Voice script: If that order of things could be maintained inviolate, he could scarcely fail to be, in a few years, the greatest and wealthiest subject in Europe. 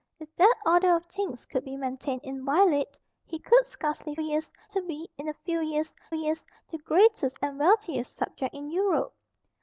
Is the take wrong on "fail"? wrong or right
wrong